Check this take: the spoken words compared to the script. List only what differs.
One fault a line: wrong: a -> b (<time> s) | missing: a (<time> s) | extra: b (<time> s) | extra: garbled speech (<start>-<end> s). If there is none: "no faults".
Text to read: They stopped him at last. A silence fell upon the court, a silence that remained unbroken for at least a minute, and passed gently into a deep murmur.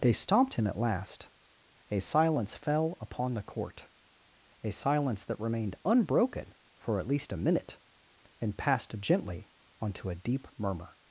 wrong: into -> onto (9.8 s)